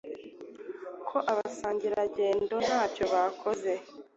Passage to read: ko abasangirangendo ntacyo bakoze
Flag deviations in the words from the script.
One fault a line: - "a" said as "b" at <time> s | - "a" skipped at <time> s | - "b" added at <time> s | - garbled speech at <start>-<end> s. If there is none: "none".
none